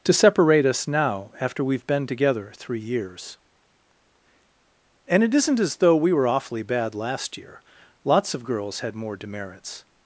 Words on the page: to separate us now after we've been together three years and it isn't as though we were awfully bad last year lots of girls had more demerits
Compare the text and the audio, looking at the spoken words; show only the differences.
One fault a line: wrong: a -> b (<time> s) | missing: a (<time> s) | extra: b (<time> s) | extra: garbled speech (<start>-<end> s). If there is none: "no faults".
no faults